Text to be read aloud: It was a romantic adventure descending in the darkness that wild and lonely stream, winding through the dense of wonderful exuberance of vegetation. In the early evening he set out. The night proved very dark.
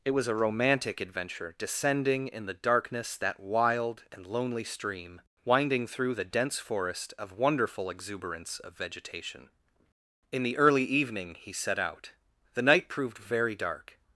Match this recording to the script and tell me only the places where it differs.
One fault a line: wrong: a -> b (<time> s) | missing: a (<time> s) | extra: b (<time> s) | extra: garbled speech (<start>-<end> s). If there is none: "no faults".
extra: forest (6.6 s)